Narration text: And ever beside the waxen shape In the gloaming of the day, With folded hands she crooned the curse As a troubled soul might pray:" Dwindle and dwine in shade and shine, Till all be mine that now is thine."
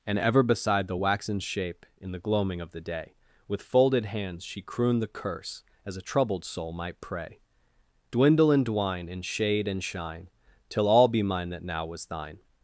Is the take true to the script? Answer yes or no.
no